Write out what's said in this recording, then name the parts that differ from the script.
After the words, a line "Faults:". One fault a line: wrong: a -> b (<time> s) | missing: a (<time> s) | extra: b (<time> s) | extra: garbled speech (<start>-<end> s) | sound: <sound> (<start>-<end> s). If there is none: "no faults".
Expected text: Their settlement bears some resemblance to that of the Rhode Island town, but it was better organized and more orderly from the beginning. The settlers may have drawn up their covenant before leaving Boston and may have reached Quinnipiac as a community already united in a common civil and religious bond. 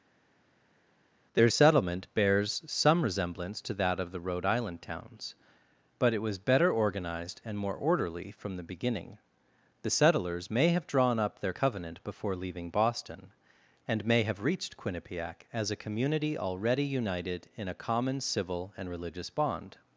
Their settlement bears some resemblance to that of the Rhode Island towns, but it was better organized and more orderly from the beginning. The settlers may have drawn up their covenant before leaving Boston and may have reached Quinnipiac as a community already united in a common civil and religious bond.
Faults:
wrong: town -> towns (4.8 s)